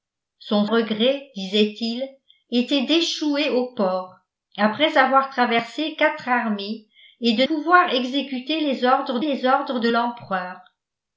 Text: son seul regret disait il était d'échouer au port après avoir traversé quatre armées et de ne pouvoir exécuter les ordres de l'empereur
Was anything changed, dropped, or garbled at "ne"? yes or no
yes